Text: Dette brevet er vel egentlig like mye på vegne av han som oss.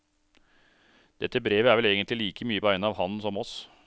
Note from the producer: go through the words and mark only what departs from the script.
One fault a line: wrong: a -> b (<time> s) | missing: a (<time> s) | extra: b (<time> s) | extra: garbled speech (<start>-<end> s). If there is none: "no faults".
missing: på (2.6 s)